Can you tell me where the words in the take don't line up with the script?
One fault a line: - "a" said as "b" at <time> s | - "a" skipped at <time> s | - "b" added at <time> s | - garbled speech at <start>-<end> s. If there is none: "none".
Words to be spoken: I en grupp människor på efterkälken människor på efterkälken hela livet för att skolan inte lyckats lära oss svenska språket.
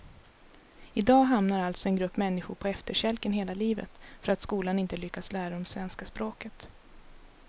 - "en grupp människor på efterkälken" said as "dag hamnar alltså en grupp" at 1.0 s
- "oss" said as "dem" at 5.5 s